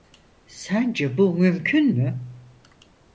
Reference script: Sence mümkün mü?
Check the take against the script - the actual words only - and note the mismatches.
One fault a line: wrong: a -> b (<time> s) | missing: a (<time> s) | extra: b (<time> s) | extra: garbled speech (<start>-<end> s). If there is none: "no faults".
extra: bu (1.2 s)